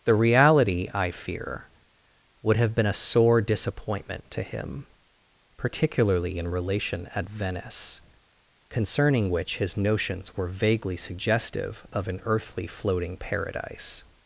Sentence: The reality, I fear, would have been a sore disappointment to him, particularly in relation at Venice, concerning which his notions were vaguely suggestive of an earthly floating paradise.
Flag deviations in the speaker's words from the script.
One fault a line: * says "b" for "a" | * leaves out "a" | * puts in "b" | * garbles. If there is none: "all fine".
all fine